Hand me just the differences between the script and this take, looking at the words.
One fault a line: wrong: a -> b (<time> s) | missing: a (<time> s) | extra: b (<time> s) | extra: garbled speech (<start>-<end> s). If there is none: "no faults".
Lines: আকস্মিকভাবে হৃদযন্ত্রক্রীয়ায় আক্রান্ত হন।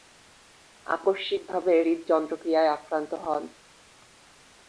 no faults